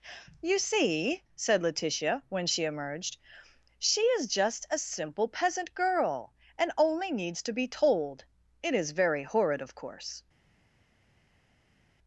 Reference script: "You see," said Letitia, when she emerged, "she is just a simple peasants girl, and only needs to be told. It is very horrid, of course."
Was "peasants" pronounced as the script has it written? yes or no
no